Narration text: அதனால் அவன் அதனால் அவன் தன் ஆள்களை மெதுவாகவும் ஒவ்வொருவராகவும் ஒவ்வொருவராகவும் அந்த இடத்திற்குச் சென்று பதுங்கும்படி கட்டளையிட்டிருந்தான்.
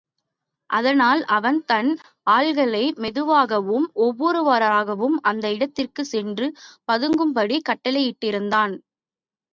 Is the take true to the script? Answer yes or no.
no